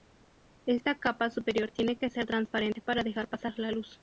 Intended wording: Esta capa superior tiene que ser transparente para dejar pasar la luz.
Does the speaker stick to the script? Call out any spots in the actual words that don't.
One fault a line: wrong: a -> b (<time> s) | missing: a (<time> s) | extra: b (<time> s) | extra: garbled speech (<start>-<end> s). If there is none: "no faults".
no faults